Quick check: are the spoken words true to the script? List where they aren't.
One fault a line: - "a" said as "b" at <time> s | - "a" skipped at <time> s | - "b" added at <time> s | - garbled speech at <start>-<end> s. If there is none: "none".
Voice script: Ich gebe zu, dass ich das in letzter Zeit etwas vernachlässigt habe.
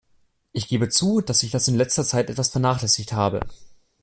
none